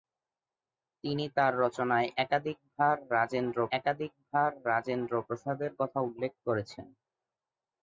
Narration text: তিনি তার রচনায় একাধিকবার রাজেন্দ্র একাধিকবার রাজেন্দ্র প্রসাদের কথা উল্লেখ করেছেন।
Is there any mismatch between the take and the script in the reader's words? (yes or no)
no